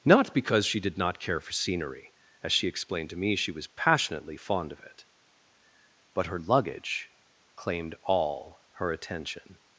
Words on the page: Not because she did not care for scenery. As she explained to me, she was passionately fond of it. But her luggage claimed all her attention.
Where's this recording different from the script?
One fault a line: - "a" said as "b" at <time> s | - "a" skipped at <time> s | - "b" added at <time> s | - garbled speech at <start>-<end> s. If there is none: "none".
none